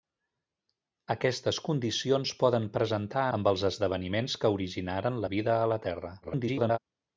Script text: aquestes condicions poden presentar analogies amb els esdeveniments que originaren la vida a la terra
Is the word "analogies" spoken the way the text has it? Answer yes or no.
no